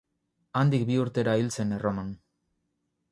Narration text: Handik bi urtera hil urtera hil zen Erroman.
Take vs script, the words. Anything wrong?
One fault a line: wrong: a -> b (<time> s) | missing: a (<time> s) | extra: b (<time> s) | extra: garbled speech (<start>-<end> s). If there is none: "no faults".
missing: urtera hil (1.5 s)